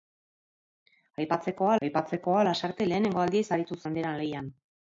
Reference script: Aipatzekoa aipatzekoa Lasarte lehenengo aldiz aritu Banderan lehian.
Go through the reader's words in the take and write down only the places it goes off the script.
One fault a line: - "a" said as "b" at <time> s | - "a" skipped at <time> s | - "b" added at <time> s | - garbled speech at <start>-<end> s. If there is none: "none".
none